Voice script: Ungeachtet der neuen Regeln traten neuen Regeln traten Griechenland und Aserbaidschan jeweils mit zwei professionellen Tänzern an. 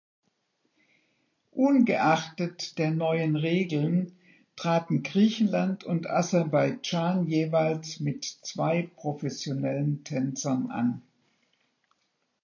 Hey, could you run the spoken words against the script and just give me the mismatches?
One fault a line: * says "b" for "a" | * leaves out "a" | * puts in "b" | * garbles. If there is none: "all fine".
* leaves out "neuen Regeln traten"